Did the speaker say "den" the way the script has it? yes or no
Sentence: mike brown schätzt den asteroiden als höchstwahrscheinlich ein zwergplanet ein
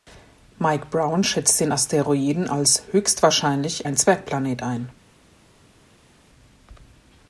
yes